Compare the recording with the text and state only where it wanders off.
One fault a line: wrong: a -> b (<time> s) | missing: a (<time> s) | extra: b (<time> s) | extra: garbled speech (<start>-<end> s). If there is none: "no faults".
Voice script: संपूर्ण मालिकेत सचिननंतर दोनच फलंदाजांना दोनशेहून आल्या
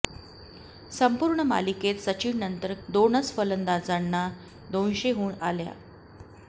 no faults